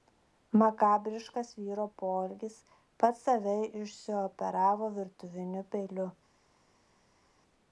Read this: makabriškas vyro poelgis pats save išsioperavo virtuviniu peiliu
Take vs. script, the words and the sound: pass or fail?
pass